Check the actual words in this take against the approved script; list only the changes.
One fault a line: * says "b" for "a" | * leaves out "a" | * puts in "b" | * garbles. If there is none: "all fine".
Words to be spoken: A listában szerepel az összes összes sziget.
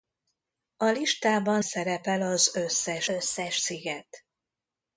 all fine